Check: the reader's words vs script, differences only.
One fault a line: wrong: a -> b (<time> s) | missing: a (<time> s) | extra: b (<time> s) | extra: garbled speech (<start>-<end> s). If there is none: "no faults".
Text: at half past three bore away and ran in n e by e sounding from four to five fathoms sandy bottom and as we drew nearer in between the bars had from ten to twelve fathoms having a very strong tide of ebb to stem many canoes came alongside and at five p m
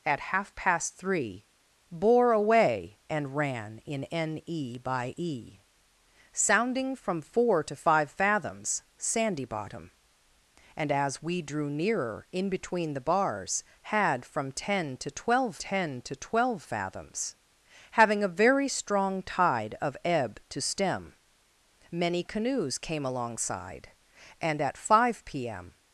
extra: ten to twelve (15.6 s)